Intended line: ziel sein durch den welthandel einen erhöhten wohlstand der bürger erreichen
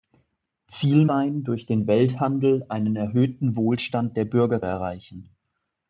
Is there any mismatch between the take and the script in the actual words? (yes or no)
no